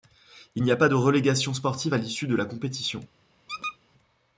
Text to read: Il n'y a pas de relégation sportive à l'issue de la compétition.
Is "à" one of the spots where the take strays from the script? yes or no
no